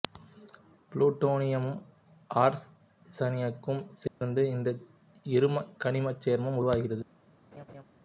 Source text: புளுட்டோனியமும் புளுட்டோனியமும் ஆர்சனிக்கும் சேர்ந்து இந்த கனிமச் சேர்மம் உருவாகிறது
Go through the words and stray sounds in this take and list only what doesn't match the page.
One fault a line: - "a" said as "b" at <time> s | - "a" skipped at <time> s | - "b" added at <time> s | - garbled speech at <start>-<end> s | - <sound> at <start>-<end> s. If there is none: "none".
- "புளுட்டோனியமும்" skipped at 1.8 s
- dropout at 4.1-4.2 s
- "இரும" added at 5.2 s
- laugh at 7.5-7.8 s